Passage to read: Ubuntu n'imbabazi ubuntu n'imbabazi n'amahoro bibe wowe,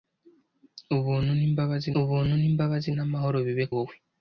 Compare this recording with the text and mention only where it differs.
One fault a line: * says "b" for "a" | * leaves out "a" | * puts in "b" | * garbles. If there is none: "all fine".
all fine